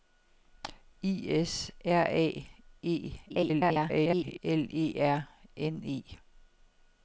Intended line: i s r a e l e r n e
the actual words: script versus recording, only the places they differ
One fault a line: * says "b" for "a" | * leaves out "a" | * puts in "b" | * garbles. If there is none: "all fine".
* garbles